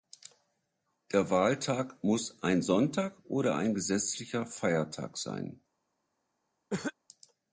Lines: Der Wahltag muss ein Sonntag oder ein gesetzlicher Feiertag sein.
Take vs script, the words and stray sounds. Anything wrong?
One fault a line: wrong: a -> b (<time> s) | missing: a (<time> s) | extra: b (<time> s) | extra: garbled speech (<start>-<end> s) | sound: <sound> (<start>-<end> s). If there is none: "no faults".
sound: cough (6.7-6.9 s)